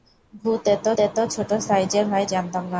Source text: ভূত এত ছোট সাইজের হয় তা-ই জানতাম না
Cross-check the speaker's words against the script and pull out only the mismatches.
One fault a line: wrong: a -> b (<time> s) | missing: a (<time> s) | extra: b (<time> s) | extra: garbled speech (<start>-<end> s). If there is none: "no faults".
extra: এত (1.0 s)
missing: তা-ই (2.3 s)